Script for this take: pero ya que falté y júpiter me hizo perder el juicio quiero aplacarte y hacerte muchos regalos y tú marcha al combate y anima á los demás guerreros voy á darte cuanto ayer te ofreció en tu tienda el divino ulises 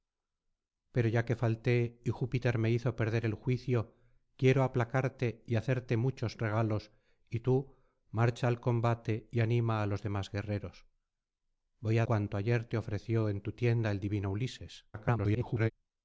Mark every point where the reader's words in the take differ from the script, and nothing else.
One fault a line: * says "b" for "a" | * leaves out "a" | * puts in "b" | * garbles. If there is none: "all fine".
* leaves out "darte"
* garbles